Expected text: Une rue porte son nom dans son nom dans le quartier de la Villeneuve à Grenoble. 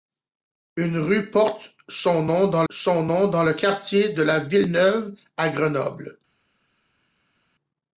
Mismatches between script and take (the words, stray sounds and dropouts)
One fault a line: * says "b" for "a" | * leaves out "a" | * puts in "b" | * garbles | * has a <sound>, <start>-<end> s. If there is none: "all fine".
all fine